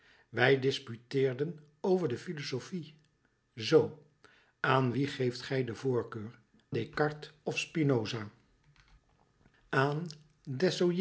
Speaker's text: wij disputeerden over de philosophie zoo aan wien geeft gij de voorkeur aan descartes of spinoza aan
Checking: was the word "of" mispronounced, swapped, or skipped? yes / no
no